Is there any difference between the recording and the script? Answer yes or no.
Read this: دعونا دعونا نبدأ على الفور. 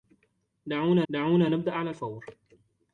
no